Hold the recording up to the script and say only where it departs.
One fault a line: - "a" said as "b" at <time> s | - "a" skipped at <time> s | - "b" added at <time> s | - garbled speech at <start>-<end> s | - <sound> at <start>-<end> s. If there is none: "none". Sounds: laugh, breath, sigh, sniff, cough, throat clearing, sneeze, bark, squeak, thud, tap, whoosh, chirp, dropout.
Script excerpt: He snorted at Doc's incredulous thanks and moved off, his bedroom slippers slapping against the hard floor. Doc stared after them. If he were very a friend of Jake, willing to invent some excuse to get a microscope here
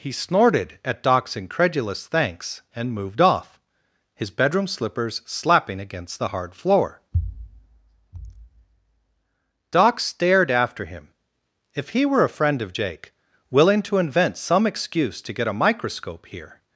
- "them" said as "him" at 10.8 s
- "very" skipped at 12.2 s